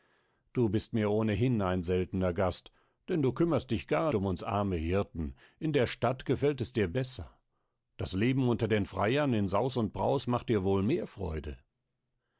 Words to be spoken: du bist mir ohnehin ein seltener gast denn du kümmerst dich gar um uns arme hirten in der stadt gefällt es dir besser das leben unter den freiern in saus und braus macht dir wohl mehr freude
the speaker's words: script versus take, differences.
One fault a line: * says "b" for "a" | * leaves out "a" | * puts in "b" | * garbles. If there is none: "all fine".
all fine